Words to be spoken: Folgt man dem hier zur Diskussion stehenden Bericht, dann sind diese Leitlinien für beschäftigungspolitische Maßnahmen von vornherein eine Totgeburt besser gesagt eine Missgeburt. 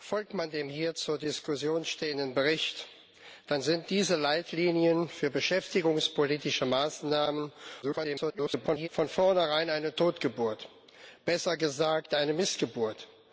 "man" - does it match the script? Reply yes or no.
yes